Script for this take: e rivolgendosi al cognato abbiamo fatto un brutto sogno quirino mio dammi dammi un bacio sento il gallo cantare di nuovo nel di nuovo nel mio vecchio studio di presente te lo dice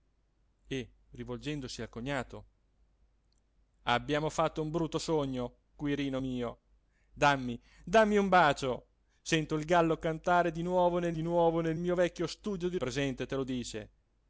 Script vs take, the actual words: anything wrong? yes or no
no